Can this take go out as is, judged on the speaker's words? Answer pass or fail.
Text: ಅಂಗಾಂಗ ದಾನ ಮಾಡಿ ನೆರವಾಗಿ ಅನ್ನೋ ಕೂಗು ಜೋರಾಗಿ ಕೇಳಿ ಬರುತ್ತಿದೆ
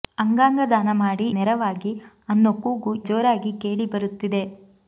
pass